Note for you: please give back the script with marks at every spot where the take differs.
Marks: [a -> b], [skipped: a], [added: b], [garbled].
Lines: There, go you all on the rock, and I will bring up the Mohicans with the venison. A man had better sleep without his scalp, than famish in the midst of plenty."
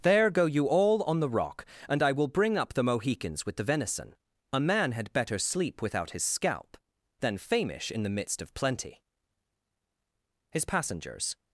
There, go you all on the rock, and I will bring up the Mohicans with the venison. A man had better sleep without his scalp, than famish in the midst of plenty." [added: His passengers]